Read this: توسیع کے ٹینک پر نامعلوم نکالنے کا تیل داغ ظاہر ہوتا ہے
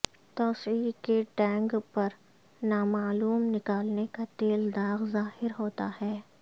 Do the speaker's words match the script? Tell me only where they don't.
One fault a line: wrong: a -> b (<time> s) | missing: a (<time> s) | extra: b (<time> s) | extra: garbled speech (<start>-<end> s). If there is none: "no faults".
no faults